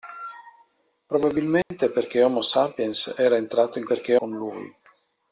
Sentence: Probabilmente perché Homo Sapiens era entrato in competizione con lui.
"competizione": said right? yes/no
no